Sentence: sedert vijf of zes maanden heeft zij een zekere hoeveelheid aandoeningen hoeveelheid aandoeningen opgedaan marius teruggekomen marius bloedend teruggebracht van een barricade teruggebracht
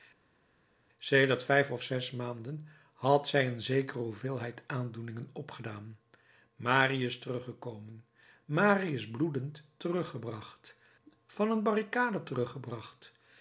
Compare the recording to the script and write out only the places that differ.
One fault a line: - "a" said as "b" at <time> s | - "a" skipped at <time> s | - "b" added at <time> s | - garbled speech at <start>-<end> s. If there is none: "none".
- "heeft" said as "had" at 2.9 s
- "hoeveelheid aandoeningen" skipped at 5.3 s